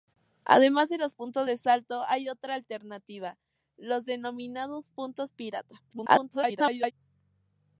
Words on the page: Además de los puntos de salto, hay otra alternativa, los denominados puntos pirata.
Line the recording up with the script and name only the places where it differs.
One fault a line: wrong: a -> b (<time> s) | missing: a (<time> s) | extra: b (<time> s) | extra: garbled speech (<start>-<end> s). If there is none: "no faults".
extra: garbled speech (5.9-6.9 s)